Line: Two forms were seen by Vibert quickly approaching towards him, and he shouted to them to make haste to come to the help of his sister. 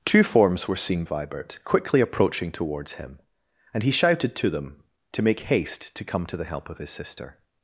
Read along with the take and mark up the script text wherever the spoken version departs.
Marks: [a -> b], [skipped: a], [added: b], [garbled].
Two forms were seen [skipped: by] Vibert quickly approaching towards him, and he shouted to them to make haste to come to the help of his sister.